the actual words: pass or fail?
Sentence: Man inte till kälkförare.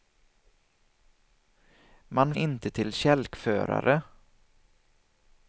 pass